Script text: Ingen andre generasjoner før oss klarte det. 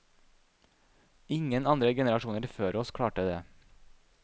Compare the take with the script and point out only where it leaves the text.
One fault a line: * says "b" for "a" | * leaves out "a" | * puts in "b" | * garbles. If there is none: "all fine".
all fine